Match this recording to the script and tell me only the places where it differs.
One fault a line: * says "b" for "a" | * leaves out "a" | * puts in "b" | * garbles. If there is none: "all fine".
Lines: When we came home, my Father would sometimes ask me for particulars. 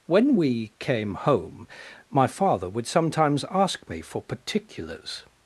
all fine